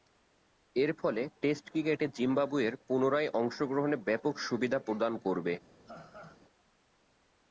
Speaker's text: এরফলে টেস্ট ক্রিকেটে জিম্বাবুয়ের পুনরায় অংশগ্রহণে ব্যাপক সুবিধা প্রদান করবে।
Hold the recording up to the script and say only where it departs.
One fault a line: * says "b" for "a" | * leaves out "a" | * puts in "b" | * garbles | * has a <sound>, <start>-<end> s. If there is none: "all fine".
* has a laugh, 5.9-6.4 s